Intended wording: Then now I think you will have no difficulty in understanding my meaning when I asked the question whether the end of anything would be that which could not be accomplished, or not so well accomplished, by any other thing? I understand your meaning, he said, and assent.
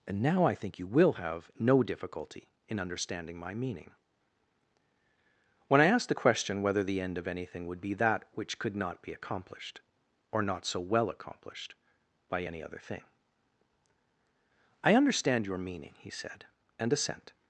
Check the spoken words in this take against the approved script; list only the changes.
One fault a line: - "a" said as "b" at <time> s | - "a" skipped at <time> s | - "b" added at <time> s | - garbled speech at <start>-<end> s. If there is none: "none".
- "Then" said as "And" at 0.1 s